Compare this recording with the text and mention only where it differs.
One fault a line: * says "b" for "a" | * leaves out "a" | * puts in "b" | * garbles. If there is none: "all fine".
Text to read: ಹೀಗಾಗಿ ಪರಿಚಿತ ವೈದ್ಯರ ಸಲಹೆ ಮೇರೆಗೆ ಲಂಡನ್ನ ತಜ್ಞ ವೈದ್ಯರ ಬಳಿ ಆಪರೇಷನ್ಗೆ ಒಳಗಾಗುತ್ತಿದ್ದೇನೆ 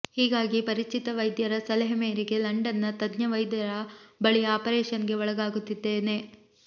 all fine